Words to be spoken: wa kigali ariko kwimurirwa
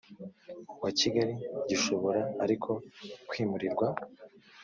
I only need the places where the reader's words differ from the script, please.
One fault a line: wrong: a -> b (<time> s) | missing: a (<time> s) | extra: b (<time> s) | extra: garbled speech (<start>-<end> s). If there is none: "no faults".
extra: gishobora (1.7 s)